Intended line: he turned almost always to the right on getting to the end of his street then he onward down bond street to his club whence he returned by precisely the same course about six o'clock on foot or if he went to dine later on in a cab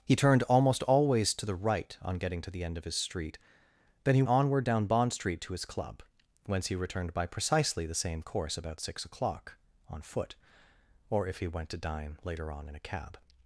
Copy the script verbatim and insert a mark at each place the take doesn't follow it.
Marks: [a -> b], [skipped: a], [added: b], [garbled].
he turned almost always to the right on getting to the end of his street then he onward down bond street to his club whence he returned by precisely the same course about six o'clock on foot or if he went to dine later on in a cab